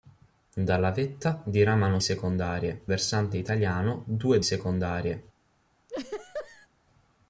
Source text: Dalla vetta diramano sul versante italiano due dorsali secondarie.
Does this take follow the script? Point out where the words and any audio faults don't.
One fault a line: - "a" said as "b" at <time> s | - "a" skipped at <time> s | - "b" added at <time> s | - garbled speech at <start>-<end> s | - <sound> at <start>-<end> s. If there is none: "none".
- "sul" said as "secondarie" at 2.0 s
- "dorsali" skipped at 4.4 s
- laugh at 5.9-6.7 s